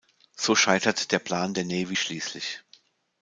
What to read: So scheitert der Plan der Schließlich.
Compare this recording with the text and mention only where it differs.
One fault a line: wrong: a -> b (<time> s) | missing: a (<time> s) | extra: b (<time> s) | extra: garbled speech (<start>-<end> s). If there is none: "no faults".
extra: Navy (1.6 s)